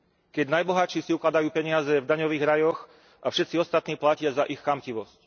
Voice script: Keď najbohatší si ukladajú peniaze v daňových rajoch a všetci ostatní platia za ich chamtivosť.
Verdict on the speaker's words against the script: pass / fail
pass